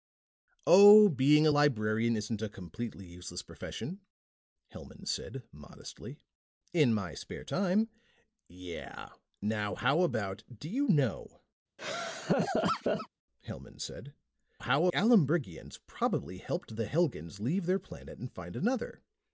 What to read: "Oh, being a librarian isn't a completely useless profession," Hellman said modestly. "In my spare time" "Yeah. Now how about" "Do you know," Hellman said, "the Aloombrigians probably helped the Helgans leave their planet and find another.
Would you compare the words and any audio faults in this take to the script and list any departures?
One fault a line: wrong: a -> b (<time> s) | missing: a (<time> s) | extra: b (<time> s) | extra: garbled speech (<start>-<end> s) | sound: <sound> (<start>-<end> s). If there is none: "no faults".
sound: laugh (11.8-13.1 s)
wrong: the -> how (14.6 s)